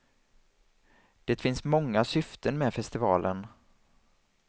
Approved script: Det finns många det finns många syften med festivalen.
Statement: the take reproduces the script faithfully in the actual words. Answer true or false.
false